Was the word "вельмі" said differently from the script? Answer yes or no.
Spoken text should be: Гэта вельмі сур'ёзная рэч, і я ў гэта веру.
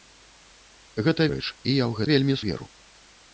yes